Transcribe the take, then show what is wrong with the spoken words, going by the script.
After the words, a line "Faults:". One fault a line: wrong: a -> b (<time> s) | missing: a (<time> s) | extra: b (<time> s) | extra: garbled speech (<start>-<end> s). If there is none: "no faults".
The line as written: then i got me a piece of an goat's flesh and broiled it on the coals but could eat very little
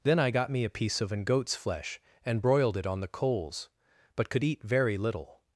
then i got me a piece of an goat's flesh and broiled it on the coals but could eat very little
Faults:
no faults